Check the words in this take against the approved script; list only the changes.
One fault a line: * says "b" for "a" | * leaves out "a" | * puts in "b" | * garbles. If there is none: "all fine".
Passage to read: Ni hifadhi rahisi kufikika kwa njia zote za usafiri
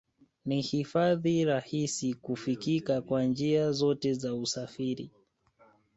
all fine